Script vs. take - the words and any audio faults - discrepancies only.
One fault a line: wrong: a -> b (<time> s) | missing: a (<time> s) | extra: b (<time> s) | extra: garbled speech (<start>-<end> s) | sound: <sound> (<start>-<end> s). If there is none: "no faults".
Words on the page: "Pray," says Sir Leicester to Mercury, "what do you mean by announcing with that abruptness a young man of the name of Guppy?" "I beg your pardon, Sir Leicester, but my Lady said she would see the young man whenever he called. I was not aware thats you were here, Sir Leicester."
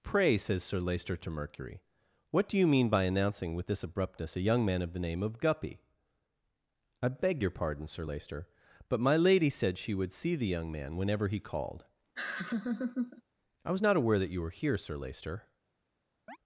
wrong: that -> this (3.7 s)
sound: laugh (12.2-13.2 s)
wrong: thats -> that (14.2 s)
sound: chirp (16.3-16.4 s)